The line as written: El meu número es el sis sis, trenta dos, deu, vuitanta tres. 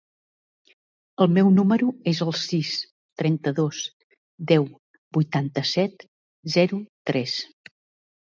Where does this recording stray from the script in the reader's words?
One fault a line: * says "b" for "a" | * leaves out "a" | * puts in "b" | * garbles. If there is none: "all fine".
* leaves out "sis"
* puts in "set zero"